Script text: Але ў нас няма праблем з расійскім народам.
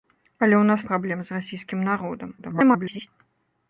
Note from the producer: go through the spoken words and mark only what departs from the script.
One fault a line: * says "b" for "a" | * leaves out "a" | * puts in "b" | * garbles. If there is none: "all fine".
* leaves out "няма"
* garbles